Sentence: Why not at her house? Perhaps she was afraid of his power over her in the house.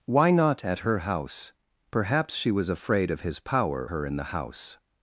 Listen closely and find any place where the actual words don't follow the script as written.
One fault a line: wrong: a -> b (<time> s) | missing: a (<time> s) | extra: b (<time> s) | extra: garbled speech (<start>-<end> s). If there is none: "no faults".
missing: over (3.9 s)